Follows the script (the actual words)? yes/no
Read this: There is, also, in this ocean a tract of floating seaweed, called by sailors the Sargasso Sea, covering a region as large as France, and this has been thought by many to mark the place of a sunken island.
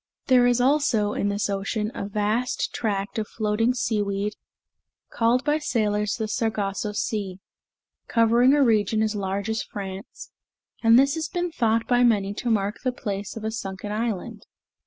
no